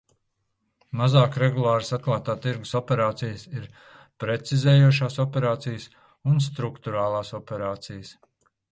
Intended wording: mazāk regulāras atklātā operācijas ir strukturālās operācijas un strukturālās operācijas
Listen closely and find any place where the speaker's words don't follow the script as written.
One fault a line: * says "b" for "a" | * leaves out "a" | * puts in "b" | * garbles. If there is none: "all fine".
* puts in "tirgus"
* says "precizējošās" for "strukturālās"